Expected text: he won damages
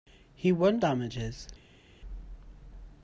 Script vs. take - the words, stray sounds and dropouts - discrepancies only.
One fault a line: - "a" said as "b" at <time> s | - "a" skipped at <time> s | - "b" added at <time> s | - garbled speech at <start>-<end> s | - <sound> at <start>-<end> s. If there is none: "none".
none